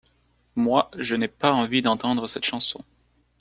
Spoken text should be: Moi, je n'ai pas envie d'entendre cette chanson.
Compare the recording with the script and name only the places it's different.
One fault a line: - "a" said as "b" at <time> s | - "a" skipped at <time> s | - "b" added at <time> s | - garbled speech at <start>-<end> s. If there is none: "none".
none